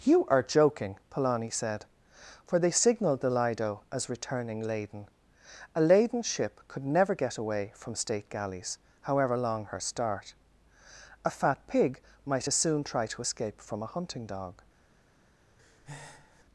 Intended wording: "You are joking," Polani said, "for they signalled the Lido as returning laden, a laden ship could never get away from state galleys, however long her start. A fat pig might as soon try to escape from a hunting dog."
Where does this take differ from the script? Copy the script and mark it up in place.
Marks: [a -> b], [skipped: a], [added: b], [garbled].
"You are joking," Polani said, "for they signalled the Lido as returning laden, a laden ship could never get away from state galleys, however long her start. A fat pig might as soon try to escape from a hunting dog."